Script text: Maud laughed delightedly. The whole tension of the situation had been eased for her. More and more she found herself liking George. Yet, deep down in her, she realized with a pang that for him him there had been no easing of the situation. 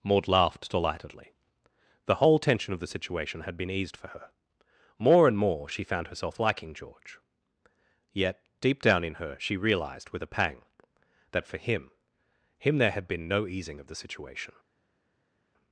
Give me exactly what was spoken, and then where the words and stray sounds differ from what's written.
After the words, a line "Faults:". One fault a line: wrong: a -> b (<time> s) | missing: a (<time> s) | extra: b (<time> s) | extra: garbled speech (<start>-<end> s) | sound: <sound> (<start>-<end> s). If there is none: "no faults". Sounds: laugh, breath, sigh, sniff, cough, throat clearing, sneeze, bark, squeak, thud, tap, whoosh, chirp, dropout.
Maud laughed delightedly. The whole tension of the situation had been eased for her. More and more she found herself liking George. Yet, deep down in her, she realized with a pang that for him him there had been no easing of the situation.
Faults:
no faults